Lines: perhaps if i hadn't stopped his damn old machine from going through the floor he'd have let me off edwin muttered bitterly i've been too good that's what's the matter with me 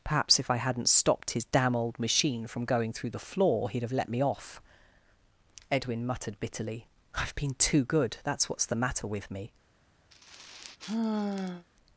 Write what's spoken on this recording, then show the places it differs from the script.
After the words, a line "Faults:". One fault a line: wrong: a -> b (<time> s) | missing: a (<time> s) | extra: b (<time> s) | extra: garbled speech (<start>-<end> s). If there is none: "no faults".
perhaps if i hadn't stopped his damn old machine from going through the floor he'd have let me off edwin muttered bitterly i've been too good that's what's the matter with me
Faults:
no faults